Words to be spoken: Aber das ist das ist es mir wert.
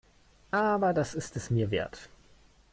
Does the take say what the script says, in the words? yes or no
no